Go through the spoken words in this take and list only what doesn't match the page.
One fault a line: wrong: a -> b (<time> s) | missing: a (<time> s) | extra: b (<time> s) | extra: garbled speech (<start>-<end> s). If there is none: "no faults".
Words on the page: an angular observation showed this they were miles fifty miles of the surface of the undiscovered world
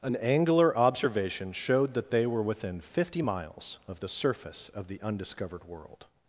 wrong: this -> that (1.9 s)
wrong: miles -> within (2.4 s)